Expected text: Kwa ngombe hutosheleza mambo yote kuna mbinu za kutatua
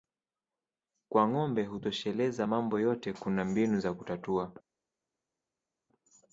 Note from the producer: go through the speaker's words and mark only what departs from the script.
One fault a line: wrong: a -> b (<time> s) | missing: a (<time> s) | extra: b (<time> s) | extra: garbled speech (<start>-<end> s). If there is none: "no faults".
no faults